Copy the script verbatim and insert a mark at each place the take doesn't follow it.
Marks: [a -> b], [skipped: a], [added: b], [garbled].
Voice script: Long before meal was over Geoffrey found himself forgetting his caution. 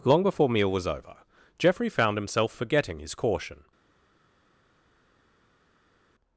Long before meal was over Geoffrey found himself forgetting his caution.